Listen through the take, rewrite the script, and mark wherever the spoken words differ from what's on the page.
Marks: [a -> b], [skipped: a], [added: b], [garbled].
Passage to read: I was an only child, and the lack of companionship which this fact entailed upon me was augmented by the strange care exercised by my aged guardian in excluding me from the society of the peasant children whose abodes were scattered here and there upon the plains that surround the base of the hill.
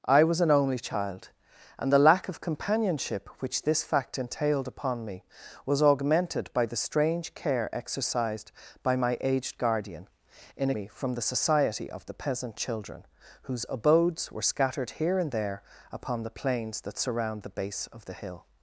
I was an only child, and the lack of companionship which this fact entailed upon me was augmented by the strange care exercised by my aged guardian in [skipped: excluding] me from the society of the peasant children whose abodes were scattered here and there upon the plains that surround the base of the hill.